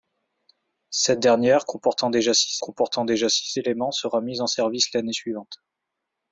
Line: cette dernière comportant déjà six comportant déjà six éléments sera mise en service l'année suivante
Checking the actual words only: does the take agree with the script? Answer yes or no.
yes